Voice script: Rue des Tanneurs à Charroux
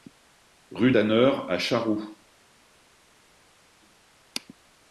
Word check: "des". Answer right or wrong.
wrong